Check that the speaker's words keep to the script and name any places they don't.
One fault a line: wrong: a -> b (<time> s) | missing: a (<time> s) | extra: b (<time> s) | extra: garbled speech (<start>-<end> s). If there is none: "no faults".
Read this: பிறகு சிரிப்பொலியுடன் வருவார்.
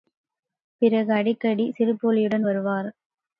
extra: அடிக்கடி (1.1 s)